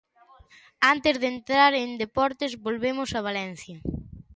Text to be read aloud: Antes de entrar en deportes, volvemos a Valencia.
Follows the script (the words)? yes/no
yes